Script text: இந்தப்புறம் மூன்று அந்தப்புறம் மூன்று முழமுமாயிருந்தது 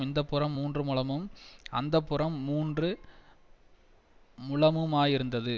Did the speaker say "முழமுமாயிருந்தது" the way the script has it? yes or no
yes